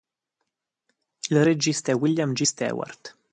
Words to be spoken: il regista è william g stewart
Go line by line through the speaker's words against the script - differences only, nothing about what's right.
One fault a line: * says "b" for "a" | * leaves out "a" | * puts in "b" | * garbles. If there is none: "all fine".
all fine